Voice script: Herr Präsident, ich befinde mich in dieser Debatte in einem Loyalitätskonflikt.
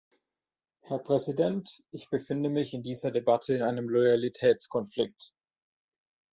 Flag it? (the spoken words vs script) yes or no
no